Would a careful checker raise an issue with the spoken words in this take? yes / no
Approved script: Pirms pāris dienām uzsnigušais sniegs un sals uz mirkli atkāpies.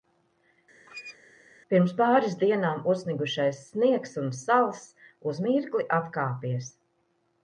no